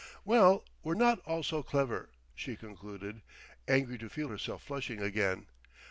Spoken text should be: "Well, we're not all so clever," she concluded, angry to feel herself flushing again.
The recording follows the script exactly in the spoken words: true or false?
true